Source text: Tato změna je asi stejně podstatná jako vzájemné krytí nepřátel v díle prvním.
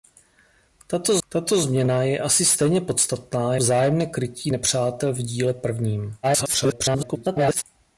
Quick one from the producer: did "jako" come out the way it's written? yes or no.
no